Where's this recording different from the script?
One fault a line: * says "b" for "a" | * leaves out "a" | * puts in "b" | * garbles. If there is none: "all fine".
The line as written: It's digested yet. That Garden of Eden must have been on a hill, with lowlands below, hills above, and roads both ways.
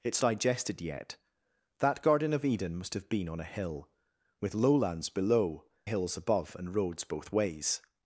all fine